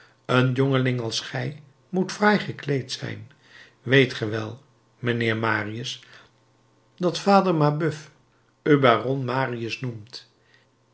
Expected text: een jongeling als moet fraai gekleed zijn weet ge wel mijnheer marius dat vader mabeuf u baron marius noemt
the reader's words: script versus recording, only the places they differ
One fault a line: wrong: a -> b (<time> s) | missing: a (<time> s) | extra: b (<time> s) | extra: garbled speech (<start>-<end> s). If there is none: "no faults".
extra: gij (1.2 s)